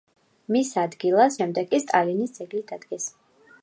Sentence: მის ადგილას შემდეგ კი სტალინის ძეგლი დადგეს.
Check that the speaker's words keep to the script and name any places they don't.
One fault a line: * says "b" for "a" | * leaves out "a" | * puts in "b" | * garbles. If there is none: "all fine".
all fine